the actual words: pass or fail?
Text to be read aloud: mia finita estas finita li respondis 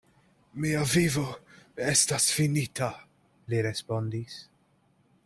fail